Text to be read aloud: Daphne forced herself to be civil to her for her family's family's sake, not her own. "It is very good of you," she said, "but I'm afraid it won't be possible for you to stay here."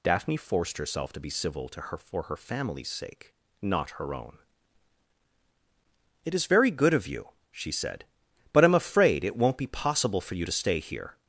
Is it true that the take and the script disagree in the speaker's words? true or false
true